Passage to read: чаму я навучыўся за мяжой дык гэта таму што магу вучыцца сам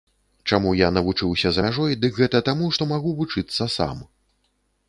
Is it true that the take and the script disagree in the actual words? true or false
false